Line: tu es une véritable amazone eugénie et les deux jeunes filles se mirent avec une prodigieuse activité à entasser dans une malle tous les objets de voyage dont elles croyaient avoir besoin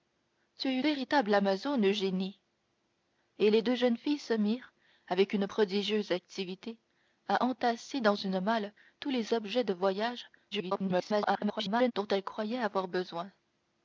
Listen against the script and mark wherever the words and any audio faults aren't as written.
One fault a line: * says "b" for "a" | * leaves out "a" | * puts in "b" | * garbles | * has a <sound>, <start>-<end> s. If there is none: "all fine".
* leaves out "une"
* garbles